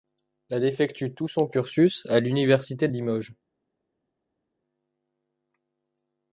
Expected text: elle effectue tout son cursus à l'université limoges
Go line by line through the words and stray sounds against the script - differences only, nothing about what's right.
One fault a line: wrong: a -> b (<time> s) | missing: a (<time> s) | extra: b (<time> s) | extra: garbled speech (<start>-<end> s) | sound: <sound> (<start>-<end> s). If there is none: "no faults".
no faults